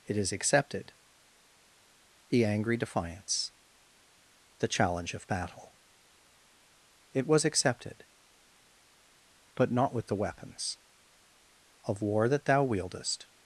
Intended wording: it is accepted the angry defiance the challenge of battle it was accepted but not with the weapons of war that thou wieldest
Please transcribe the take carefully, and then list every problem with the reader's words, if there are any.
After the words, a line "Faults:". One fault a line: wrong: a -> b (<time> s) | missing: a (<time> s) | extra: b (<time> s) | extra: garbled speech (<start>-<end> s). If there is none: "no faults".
it is accepted the angry defiance the challenge of battle it was accepted but not with the weapons of war that thou wieldest
Faults:
no faults